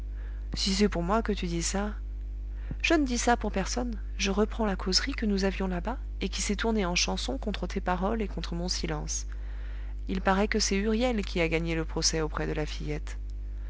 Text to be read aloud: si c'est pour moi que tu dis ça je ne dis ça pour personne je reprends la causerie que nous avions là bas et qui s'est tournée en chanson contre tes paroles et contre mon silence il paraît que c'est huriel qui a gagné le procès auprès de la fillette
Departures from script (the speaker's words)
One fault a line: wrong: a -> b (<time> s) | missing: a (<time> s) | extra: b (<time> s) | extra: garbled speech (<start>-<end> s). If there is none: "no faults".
no faults